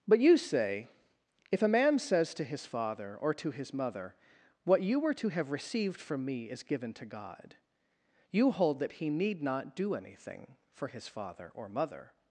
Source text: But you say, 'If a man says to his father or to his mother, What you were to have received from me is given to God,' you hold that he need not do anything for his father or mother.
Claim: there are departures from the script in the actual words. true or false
false